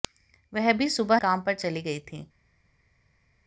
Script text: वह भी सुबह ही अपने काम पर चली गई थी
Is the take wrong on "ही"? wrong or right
wrong